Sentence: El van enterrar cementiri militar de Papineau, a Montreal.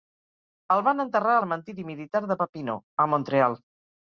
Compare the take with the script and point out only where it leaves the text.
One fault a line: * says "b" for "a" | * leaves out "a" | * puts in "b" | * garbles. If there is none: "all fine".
all fine